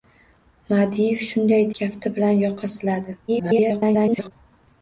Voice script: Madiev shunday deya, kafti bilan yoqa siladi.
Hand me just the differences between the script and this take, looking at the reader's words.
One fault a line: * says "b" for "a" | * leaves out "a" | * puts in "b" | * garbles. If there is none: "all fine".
* leaves out "deya"
* garbles